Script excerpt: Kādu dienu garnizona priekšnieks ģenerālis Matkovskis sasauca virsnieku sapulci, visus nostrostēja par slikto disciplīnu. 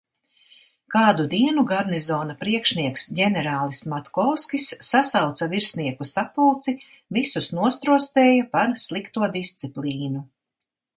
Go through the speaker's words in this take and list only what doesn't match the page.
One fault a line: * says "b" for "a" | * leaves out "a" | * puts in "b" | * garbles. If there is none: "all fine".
all fine